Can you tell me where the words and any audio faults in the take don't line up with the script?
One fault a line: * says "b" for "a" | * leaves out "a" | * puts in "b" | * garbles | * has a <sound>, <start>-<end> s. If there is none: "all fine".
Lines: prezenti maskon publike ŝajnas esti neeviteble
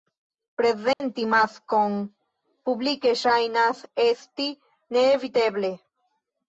* has a dropout, 0.9-1.0 s